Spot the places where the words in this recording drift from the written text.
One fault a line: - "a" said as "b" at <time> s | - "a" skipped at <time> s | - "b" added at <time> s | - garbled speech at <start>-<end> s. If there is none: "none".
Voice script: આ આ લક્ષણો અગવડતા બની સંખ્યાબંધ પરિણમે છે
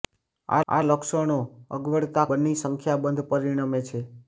none